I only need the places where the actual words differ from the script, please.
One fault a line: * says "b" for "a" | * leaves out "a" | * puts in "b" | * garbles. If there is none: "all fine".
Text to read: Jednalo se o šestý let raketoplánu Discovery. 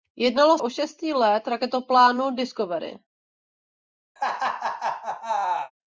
* leaves out "se"